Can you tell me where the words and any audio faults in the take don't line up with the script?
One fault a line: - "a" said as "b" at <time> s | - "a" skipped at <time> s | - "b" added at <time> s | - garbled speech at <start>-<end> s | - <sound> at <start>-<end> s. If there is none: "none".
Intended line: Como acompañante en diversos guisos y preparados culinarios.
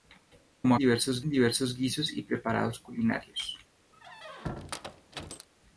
- "acompañante" said as "diversos" at 0.8 s
- squeak at 3.9-5.5 s